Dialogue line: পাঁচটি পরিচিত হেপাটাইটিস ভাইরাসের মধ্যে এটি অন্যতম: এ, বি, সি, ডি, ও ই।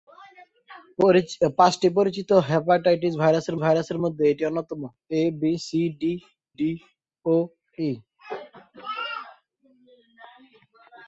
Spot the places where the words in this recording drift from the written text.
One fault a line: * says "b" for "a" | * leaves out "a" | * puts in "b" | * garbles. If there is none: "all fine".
* puts in "ভাইরাসের"
* puts in "ডি"